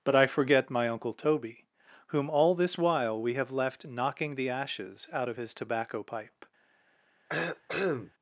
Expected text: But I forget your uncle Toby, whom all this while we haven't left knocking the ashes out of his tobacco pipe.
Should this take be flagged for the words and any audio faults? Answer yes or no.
yes